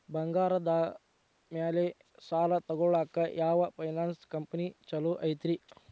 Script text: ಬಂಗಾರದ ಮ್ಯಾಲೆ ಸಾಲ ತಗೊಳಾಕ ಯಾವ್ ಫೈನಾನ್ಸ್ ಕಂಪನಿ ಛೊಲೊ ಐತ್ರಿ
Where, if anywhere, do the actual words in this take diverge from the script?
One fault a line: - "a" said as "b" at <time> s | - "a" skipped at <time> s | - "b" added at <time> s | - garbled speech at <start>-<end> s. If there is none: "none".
none